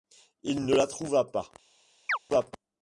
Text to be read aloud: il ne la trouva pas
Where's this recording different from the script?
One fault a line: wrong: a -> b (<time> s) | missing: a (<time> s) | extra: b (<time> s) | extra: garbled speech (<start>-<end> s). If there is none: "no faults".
no faults